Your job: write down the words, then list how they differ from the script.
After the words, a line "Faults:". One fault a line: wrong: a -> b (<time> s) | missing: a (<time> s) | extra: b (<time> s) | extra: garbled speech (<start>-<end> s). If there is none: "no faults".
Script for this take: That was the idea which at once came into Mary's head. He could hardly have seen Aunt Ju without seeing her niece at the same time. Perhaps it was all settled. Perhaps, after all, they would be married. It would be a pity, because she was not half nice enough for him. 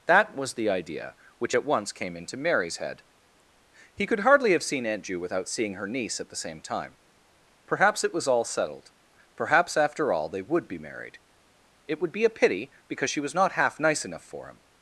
That was the idea which at once came into Mary's head. He could hardly have seen Aunt Ju without seeing her niece at the same time. Perhaps it was all settled. Perhaps, after all, they would be married. It would be a pity, because she was not half nice enough for him.
Faults:
no faults